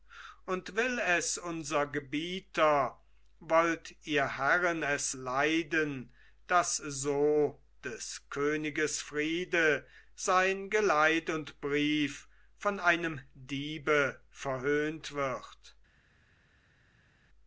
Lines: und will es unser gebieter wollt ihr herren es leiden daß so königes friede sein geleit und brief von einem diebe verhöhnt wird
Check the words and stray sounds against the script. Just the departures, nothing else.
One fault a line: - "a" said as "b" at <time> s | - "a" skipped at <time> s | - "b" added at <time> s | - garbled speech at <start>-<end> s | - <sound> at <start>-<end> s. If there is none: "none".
- "des" added at 7.8 s